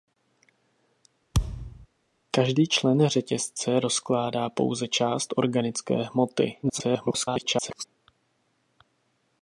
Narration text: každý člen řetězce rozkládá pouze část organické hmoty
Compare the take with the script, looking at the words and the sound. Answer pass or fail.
fail